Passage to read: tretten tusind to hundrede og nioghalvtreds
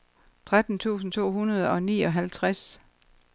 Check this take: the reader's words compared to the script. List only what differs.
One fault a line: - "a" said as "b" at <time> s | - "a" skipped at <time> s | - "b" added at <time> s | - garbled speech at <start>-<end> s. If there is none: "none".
none